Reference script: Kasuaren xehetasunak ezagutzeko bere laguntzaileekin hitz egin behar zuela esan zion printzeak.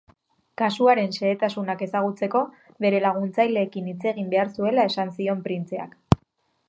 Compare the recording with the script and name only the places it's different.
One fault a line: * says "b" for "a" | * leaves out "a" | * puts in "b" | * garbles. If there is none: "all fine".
all fine